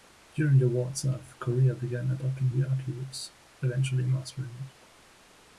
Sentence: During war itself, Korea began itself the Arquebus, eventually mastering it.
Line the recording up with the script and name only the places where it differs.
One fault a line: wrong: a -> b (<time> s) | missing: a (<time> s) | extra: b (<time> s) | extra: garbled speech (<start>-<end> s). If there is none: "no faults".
extra: the (0.6 s)
wrong: itself -> adopting (2.1 s)